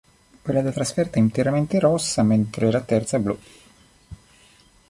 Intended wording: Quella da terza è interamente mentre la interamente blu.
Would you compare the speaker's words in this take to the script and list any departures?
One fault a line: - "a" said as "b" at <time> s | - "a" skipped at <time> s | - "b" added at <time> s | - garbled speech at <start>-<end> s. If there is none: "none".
- "terza" said as "trasferta" at 0.7 s
- "rossa" added at 1.8 s
- "interamente" said as "terza" at 2.8 s